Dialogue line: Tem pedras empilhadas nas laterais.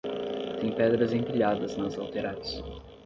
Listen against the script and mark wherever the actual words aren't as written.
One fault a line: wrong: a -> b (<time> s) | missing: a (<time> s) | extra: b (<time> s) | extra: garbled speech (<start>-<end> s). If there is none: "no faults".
no faults